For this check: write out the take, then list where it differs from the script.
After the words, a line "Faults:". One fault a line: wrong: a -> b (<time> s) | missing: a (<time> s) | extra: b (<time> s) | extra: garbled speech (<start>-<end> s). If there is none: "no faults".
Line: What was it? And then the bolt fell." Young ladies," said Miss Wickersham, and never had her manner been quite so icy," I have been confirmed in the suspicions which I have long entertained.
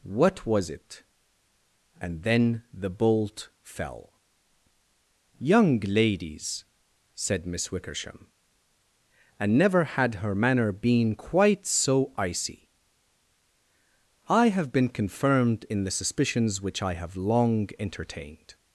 What was it? And then the bolt fell." Young ladies," said Miss Wickersham, and never had her manner been quite so icy," I have been confirmed in the suspicions which I have long entertained.
Faults:
no faults